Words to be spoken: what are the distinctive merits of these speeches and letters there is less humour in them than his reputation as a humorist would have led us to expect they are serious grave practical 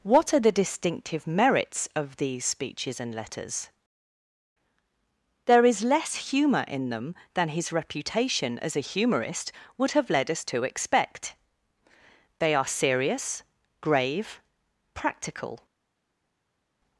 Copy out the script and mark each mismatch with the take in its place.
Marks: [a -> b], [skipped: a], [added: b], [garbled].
what are the distinctive merits of these speeches and letters there is less humour in them than his reputation as a humorist would have led us to expect they are serious grave practical